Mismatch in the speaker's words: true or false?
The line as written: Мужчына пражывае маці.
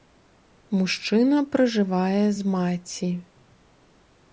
true